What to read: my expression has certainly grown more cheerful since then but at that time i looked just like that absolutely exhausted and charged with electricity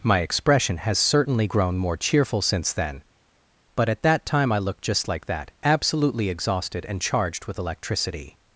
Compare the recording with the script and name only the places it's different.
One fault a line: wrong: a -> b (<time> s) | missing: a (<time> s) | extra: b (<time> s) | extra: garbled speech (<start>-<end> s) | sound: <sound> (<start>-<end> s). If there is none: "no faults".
no faults